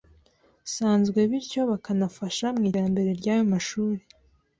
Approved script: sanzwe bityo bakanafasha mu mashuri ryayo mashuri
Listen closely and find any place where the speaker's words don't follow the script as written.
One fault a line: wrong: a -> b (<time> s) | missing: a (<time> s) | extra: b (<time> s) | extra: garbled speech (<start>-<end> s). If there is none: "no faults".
wrong: mashuri -> iterambere (2.7 s)